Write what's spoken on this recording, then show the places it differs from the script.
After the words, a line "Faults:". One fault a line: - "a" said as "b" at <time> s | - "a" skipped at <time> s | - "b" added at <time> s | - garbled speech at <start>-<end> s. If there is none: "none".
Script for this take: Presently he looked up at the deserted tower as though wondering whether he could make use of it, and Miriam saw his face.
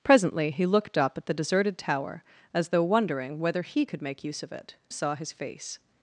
Presently he looked up at the deserted tower as though wondering whether he could make use of it, saw his face.
Faults:
- "and Miriam" skipped at 4.8 s